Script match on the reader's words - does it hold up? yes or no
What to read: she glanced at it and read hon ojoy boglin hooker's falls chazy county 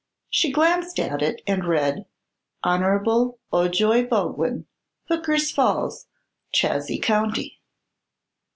yes